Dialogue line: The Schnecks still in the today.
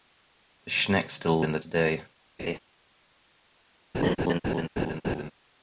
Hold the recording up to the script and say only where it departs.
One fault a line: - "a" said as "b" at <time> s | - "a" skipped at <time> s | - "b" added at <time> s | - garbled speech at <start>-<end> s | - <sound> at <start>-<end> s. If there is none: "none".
- laugh at 2.4-2.6 s
- laugh at 3.9-5.3 s